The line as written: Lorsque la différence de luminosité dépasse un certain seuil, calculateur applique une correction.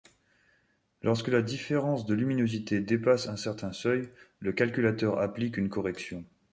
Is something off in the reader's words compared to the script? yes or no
yes